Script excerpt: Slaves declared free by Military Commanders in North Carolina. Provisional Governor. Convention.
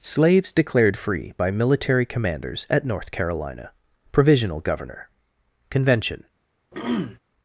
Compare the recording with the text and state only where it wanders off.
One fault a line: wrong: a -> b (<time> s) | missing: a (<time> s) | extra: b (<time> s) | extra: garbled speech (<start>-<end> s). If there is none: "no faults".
wrong: in -> at (2.7 s)